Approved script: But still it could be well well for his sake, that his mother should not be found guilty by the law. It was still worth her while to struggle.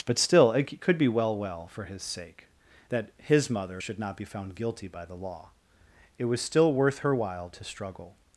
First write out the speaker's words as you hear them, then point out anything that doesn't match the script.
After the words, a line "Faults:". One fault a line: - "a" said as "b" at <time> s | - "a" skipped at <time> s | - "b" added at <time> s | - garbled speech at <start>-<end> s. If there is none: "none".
But still it could be well well for his sake, that his mother should not be found guilty by the law. It was still worth her while to struggle.
Faults:
none